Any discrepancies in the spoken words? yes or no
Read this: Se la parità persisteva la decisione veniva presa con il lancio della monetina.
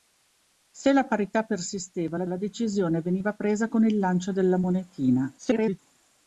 yes